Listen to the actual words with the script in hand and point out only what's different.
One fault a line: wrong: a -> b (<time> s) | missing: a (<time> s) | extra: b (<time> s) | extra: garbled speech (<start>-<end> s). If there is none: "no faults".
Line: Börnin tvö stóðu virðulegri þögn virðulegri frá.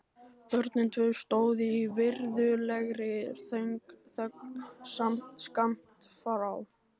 extra: í (1.7 s)
wrong: virðulegri -> skammt (5.4 s)